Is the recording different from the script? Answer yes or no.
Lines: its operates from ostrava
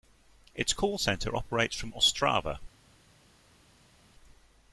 yes